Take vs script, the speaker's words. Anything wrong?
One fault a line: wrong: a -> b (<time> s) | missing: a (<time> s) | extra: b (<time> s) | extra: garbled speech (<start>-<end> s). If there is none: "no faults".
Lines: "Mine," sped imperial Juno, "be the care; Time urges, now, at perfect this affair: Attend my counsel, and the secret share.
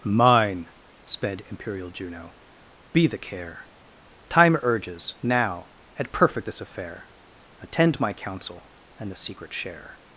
no faults